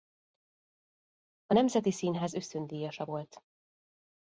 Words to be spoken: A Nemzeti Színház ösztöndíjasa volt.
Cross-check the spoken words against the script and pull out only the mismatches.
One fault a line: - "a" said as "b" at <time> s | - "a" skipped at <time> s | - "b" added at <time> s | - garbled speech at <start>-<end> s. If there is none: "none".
none